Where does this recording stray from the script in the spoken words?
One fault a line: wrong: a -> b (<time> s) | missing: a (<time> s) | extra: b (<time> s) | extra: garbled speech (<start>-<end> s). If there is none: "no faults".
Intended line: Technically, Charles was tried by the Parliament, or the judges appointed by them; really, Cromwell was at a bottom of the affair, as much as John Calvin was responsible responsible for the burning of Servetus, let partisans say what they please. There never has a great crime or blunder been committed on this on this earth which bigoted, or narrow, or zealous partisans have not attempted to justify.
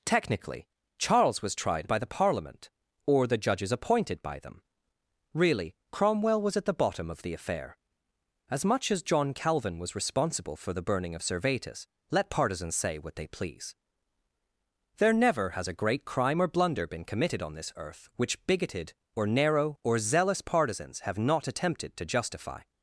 wrong: a -> the (6.6 s)
missing: responsible (10.6 s)
missing: on this (17.7 s)